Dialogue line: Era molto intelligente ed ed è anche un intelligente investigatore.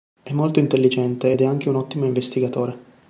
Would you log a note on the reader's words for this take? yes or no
yes